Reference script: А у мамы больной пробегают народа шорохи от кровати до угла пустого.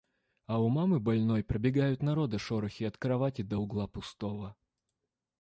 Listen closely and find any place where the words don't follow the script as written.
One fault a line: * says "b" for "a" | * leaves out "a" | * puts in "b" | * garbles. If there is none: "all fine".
all fine